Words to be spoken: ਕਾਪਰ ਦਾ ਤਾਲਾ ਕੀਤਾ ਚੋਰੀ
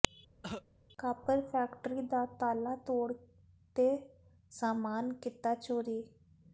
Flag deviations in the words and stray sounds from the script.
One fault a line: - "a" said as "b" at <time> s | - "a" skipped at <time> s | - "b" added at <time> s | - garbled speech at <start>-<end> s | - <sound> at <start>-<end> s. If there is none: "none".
- cough at 0.4-0.6 s
- "ਫੈਕਟਰੀ" added at 1.4 s
- "ਤੋੜ ਤੇ ਸਾਮਾਨ" added at 2.9 s